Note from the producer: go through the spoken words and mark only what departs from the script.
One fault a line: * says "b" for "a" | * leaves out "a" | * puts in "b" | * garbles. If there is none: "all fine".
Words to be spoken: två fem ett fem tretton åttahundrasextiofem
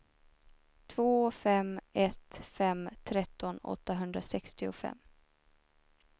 all fine